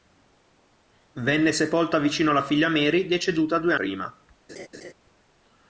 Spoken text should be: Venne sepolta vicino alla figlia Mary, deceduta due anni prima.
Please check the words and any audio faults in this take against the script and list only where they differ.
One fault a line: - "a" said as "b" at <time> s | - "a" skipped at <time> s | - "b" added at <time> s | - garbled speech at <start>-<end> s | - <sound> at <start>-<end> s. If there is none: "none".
- "anni" skipped at 3.8 s
- laugh at 4.5-4.9 s